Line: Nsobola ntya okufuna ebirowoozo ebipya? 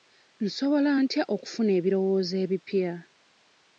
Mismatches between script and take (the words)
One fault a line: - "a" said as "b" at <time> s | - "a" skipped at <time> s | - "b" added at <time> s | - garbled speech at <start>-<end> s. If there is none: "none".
none